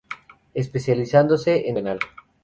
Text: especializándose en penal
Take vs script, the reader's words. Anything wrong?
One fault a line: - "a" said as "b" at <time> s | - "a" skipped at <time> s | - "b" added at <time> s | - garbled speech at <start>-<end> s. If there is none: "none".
none